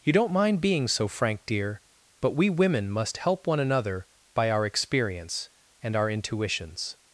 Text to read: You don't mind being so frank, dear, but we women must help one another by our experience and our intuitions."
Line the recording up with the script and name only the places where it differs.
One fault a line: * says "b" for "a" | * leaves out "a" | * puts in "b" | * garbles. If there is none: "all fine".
all fine